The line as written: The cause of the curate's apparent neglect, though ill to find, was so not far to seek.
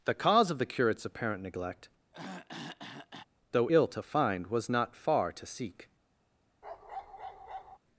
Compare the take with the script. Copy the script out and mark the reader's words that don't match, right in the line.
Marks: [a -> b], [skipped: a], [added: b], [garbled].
The cause of the curate's apparent neglect, though ill to find, was [skipped: so] not far to seek.